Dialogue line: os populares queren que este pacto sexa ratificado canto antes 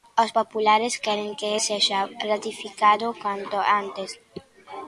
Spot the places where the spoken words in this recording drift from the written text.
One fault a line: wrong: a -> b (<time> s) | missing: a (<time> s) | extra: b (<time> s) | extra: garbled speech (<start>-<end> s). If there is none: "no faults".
missing: este pacto (1.5 s)